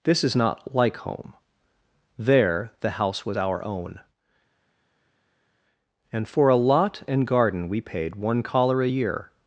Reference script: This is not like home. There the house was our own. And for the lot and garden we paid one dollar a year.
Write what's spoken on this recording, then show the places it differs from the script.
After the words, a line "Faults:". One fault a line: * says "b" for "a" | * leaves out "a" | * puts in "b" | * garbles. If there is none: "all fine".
This is not like home. There the house was our own. And for a lot and garden we paid one collar a year.
Faults:
* says "a" for "the"
* says "collar" for "dollar"